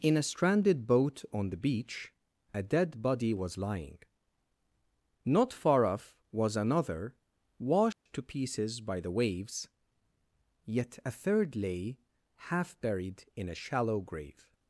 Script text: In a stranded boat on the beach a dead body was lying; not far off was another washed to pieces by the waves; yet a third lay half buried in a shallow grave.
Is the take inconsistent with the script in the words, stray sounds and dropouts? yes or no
yes